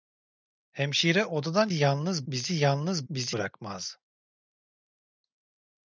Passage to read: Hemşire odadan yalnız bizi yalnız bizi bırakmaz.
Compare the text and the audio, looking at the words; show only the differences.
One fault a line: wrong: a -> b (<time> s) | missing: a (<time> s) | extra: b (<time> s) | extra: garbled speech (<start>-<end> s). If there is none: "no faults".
no faults